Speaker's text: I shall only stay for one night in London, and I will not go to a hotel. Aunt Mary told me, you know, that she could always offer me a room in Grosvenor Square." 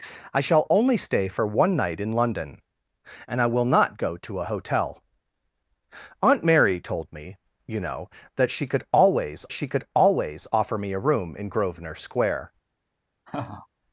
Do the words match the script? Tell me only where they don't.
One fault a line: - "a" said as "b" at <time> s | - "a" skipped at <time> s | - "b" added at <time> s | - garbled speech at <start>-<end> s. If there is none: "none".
- "she could always" added at 9.5 s